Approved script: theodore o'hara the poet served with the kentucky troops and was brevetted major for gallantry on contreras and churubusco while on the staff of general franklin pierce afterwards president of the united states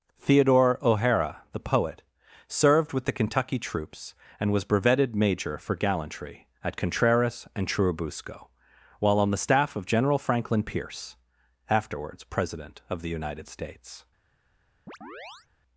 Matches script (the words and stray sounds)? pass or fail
fail